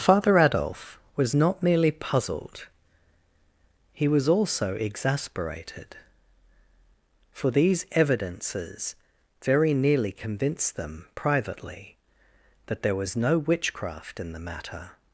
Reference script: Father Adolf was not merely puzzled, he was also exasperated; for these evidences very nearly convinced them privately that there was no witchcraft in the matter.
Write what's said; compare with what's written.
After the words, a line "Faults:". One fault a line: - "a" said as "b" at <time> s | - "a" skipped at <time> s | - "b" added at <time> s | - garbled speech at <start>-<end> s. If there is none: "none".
Father Adolf was not merely puzzled, he was also exasperated; for these evidences very nearly convinced them privately that there was no witchcraft in the matter.
Faults:
none